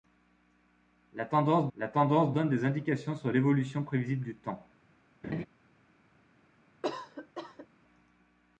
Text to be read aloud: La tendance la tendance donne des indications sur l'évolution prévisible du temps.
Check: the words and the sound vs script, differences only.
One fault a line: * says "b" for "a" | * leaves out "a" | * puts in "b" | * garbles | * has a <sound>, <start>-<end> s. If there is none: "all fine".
* has a laugh, 5.2-5.5 s
* has a cough, 6.8-7.7 s